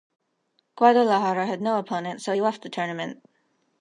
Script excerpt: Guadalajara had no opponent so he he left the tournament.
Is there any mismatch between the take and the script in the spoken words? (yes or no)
yes